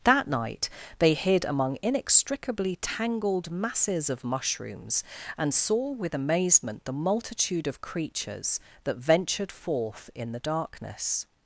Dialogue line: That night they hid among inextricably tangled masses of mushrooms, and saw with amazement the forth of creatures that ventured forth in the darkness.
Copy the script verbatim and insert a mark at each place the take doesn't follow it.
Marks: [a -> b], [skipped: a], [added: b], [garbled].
That night they hid among inextricably tangled masses of mushrooms, and saw with amazement the [forth -> multitude] of creatures that ventured forth in the darkness.